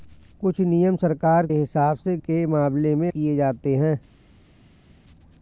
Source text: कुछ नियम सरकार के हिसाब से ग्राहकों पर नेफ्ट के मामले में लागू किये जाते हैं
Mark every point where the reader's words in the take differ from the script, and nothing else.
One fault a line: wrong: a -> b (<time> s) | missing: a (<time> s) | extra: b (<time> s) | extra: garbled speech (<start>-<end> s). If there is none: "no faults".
missing: के (1.5 s)
missing: ग्राहकों पर नेफ्ट (2.2 s)
missing: लागू (3.1 s)